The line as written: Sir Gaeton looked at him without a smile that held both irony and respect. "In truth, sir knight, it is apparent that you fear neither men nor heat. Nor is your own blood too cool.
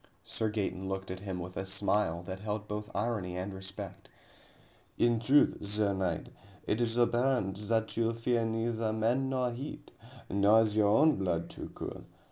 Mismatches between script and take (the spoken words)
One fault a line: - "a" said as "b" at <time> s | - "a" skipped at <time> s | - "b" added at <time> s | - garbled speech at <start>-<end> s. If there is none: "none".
- "without" said as "with" at 1.4 s